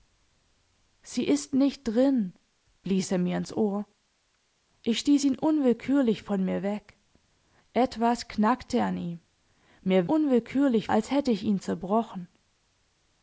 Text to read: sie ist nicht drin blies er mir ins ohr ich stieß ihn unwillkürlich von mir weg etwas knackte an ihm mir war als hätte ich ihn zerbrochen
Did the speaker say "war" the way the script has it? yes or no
no